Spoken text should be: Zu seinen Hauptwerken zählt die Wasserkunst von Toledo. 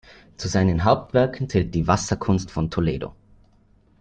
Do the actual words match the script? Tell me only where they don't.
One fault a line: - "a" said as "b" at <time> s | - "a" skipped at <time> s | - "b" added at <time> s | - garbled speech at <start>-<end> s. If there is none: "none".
none